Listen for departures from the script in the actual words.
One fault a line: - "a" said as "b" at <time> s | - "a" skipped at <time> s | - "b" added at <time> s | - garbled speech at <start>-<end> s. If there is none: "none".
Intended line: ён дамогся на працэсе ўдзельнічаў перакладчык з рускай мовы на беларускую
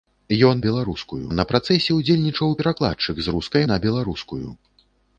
- "дамогся" said as "беларускую" at 0.7 s
- "мовы" skipped at 3.6 s